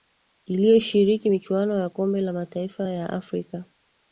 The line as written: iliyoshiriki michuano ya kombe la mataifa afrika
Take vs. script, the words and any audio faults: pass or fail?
fail